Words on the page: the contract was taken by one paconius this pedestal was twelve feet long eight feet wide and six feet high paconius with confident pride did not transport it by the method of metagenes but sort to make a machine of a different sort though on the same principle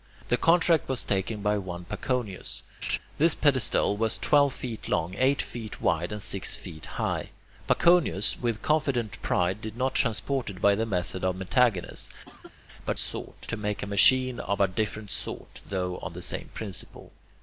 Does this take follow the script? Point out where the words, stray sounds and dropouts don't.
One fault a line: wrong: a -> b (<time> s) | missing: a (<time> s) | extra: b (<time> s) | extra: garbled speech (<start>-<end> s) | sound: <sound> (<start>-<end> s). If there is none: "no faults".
sound: laugh (2.8-3.0 s)
sound: cough (12.3-12.5 s)